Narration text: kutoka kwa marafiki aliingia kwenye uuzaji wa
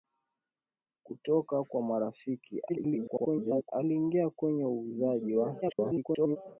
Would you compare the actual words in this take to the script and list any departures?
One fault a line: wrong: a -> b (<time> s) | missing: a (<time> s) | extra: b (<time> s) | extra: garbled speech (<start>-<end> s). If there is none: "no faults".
extra: garbled speech (2.7-3.7 s)
extra: garbled speech (5.6-6.4 s)